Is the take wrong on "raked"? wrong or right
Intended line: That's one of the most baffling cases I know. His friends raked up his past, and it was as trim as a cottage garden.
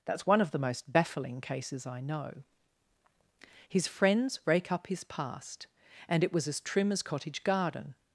wrong